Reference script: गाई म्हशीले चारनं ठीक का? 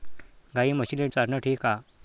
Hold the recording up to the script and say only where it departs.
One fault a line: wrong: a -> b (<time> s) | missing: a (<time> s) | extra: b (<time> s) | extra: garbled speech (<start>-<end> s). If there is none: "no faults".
no faults